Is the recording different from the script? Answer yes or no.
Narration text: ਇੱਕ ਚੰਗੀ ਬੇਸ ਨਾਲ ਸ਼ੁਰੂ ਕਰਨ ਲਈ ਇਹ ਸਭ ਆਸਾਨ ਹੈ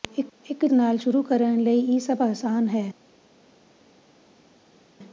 yes